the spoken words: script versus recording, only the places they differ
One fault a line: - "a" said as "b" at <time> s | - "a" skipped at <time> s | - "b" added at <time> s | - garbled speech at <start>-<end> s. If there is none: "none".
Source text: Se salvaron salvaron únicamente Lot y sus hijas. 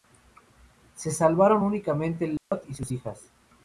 - "salvaron" skipped at 1.6 s